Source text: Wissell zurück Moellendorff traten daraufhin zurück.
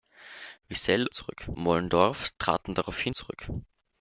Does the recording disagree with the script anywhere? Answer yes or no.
no